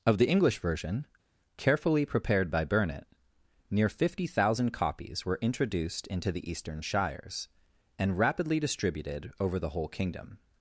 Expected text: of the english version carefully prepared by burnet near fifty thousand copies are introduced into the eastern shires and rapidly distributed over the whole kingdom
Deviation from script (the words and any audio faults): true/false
true